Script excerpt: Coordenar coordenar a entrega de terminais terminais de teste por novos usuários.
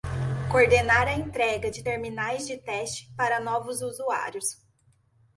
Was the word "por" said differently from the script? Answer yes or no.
yes